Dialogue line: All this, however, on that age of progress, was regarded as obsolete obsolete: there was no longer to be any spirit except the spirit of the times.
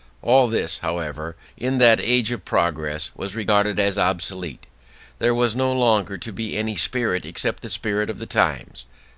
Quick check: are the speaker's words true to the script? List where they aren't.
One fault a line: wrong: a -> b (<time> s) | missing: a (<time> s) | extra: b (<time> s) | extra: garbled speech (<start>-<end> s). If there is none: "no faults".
wrong: on -> in (1.6 s)
missing: obsolete (4.7 s)